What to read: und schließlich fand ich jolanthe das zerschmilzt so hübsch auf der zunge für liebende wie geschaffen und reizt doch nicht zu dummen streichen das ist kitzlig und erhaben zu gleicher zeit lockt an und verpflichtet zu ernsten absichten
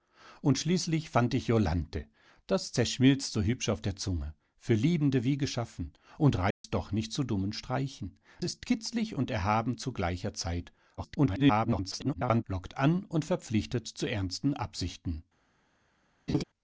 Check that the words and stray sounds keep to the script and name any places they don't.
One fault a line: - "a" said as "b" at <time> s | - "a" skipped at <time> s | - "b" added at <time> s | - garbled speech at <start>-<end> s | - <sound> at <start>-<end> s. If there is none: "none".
- dropout at 6.5-6.6 s
- "das" skipped at 8.2 s
- garbled speech at 11.0-12.4 s
- laugh at 16.3-16.4 s